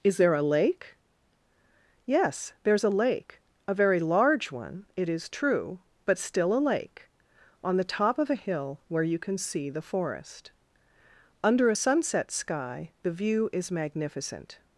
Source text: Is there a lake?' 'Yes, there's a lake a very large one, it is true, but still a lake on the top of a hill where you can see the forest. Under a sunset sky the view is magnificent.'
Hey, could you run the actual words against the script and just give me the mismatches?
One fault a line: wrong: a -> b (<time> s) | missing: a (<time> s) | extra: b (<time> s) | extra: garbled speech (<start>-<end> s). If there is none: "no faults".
no faults